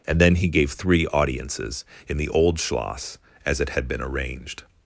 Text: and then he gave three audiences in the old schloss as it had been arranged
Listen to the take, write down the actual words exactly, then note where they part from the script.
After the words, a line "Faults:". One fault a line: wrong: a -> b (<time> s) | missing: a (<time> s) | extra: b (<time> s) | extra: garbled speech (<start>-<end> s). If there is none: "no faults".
and then he gave three audiences in the old schloss as it had been arranged
Faults:
no faults